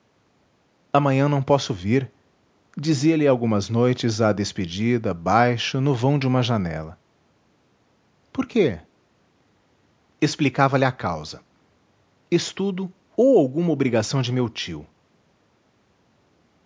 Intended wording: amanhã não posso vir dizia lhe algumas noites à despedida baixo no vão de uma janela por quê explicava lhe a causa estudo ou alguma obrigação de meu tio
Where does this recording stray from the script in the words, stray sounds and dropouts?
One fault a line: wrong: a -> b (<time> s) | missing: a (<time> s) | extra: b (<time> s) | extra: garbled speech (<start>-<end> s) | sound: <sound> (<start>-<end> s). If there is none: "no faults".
no faults